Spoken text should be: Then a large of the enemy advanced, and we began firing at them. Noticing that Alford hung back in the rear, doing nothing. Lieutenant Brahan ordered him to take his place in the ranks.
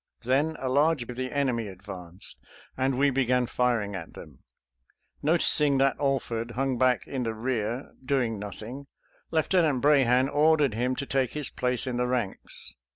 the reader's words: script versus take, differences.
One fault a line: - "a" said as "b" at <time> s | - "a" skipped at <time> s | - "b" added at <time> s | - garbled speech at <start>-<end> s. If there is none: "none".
none